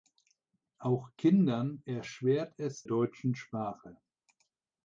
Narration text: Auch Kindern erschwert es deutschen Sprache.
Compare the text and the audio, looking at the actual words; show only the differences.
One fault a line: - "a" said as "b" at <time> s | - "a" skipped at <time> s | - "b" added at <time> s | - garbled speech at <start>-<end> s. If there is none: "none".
none